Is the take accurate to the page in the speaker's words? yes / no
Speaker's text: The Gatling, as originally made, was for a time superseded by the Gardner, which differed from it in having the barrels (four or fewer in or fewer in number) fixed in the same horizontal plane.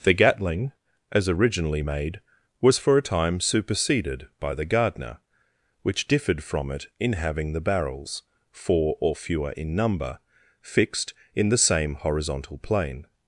no